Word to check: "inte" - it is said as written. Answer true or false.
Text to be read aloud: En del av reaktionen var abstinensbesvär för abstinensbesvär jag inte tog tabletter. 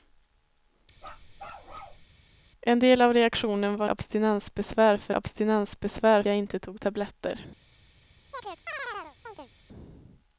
true